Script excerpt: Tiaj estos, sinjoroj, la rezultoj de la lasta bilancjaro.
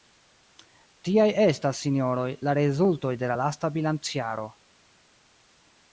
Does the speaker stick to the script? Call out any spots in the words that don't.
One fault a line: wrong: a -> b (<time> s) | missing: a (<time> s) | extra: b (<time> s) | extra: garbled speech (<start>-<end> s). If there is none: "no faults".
wrong: estos -> estas (1.4 s)